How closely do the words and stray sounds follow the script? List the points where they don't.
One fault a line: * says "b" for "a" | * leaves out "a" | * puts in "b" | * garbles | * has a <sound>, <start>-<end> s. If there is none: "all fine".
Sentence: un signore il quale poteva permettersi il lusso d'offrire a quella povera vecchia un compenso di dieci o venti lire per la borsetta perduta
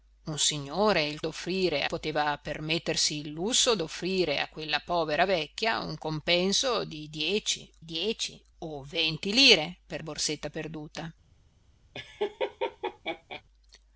* says "d'offrire" for "quale"
* puts in "dieci"
* leaves out "la"
* has a laugh, 11.9-13.4 s